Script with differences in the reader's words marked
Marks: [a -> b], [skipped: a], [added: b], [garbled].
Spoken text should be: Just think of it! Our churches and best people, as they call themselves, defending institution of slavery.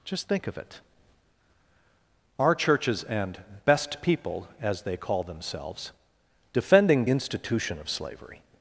Just think of it! Our churches and best people, as they call themselves, defending institution of slavery.